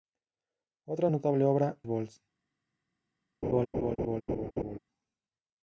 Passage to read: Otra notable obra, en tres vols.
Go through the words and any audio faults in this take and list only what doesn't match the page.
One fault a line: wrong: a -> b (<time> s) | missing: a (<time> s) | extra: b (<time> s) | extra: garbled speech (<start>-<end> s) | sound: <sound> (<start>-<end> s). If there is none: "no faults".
missing: en tres (1.8 s)
sound: laugh (3.4-4.8 s)